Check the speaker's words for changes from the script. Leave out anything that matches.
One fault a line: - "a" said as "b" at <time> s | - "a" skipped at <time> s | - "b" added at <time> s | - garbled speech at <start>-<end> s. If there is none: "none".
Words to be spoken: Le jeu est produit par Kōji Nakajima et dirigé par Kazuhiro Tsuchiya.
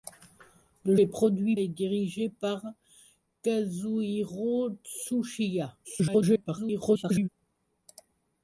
- "jeu" skipped at 0.9 s
- "par Kōji Nakajima" skipped at 1.6 s
- garbled speech at 5.8-7.3 s